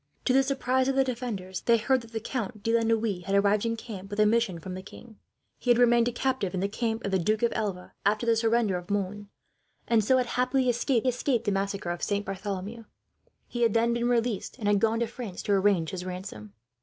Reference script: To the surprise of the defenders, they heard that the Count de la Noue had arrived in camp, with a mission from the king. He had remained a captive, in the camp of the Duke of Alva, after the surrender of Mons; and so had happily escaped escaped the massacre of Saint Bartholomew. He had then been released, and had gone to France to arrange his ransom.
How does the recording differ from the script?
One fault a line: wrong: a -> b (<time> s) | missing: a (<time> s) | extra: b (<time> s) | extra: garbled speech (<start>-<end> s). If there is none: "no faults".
no faults